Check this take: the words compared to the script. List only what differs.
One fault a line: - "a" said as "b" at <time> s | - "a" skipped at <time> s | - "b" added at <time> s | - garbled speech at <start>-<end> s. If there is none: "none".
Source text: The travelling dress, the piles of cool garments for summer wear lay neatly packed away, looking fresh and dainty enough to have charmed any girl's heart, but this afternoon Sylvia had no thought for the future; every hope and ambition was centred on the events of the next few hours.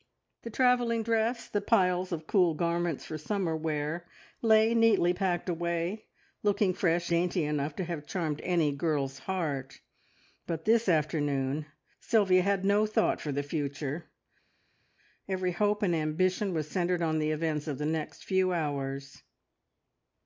- "and" skipped at 7.1 s